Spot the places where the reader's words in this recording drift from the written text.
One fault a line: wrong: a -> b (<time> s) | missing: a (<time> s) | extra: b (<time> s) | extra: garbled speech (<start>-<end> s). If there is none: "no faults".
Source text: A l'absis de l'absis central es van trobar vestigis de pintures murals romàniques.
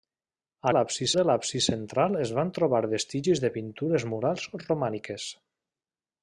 no faults